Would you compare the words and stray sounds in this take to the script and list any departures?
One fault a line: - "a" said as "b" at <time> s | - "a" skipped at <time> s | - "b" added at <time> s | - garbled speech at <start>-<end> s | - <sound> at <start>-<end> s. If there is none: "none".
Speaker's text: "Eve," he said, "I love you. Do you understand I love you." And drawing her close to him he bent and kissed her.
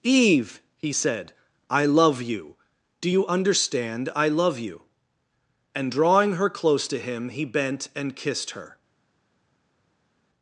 none